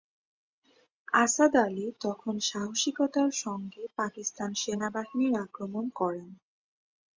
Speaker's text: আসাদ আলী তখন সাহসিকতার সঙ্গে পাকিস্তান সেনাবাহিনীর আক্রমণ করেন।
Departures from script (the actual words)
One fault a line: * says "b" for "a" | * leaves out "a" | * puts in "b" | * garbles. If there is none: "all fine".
all fine